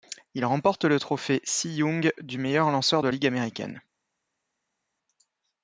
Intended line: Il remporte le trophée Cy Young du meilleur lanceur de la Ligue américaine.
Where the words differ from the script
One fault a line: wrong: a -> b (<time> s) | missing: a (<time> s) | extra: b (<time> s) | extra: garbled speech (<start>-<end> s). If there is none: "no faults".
missing: la (3.1 s)